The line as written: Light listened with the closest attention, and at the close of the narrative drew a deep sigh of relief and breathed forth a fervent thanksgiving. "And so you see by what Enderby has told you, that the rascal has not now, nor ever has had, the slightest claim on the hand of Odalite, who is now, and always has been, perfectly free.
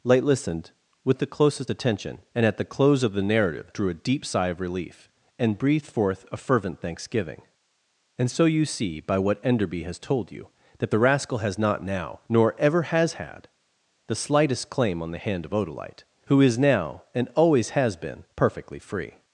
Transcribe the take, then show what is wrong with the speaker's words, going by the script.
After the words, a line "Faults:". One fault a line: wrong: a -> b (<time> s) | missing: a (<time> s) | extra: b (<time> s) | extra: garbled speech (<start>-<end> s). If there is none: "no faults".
Light listened with the closest attention, and at the close of the narrative drew a deep sigh of relief and breathed forth a fervent thanksgiving. "And so you see by what Enderby has told you, that the rascal has not now, nor ever has had, the slightest claim on the hand of Odalite, who is now, and always has been, perfectly free.
Faults:
no faults